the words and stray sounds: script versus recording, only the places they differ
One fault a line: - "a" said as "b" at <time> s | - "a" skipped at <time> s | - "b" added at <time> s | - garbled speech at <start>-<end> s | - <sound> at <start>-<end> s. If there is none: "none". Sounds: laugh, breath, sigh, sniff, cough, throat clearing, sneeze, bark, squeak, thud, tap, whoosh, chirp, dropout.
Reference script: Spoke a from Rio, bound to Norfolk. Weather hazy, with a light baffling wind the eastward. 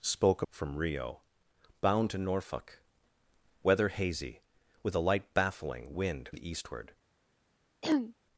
- throat clearing at 7.8-8.1 s